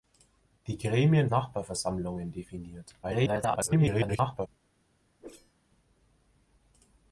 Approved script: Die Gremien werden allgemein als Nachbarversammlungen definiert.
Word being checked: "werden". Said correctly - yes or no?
no